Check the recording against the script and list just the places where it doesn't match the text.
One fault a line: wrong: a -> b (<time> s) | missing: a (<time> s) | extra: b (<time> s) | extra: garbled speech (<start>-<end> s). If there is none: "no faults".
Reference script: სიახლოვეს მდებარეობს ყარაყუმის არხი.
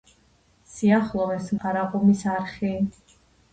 missing: მდებარეობს (1.5 s)